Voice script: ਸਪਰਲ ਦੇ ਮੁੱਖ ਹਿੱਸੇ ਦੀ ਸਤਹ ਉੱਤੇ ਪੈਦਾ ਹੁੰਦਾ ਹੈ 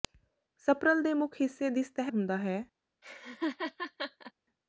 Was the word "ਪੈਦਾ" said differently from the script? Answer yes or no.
yes